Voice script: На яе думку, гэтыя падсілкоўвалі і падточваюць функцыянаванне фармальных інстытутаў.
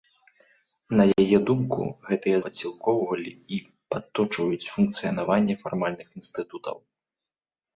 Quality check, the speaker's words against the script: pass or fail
pass